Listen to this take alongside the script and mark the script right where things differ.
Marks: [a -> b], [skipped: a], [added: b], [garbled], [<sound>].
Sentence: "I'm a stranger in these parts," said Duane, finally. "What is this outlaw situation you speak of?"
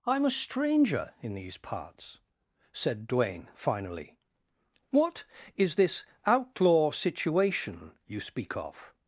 "I'm a stranger in these parts," said Duane, finally. "What is this outlaw situation you speak of?"